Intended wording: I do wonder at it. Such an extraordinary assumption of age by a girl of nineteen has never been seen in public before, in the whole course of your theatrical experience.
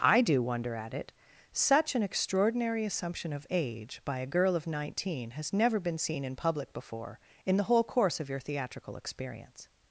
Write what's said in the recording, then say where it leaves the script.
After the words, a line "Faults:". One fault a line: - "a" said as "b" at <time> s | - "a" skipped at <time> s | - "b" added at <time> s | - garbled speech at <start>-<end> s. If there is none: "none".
I do wonder at it. Such an extraordinary assumption of age by a girl of nineteen has never been seen in public before, in the whole course of your theatrical experience.
Faults:
none